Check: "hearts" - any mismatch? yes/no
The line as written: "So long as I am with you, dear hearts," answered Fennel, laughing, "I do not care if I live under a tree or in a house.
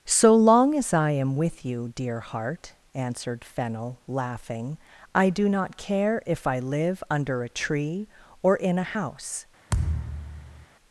yes